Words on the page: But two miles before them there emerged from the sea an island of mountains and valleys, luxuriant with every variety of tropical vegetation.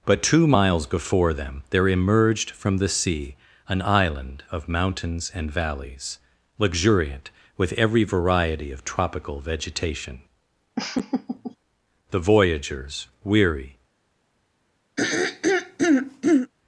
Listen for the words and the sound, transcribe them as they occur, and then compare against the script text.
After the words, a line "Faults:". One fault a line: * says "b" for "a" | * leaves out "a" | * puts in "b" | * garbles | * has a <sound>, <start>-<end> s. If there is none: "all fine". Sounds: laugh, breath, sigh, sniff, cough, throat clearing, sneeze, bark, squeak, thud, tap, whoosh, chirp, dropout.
But two miles before them there emerged from the sea an island of mountains and valleys, luxuriant with every variety of tropical vegetation. The voyagers, weary
Faults:
* has a laugh, 10.8-11.6 s
* puts in "The voyagers weary"
* has a throat clearing, 15.0-16.5 s